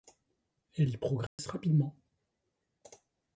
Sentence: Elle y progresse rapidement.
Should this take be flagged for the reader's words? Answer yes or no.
no